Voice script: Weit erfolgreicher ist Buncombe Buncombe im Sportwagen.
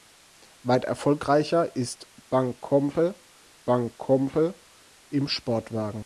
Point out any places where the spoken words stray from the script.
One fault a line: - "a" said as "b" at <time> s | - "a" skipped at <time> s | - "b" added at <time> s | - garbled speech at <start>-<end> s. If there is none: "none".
none